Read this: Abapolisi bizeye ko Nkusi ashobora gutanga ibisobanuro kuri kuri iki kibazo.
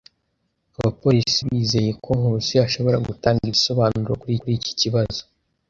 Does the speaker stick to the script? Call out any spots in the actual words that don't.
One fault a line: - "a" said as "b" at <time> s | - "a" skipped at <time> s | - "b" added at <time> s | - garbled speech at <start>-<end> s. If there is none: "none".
none